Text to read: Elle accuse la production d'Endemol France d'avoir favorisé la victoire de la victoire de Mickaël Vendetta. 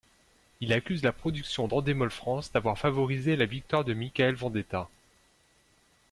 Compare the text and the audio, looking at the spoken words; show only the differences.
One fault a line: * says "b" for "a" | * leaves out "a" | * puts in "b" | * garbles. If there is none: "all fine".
* says "Il" for "Elle"
* leaves out "la victoire de"